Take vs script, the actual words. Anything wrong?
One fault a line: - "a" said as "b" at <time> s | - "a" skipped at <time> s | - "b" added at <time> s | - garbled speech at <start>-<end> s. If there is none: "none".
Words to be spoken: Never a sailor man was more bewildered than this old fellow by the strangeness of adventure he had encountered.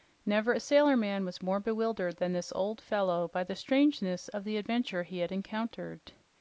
- "the" added at 4.4 s